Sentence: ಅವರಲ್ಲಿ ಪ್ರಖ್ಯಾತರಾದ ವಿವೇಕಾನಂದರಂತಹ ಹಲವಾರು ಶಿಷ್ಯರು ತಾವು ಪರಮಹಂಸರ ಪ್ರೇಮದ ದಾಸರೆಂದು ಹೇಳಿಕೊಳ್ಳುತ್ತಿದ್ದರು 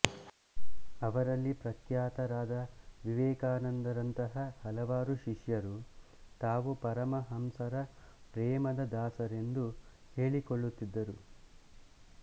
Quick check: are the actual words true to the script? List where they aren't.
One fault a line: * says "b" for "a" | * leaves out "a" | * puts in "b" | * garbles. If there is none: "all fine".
all fine